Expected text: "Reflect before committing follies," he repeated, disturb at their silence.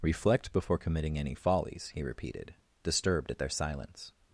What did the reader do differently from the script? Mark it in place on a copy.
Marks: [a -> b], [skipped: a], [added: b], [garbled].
"Reflect before committing [added: any] follies," he repeated, [disturb -> disturbed] at their silence.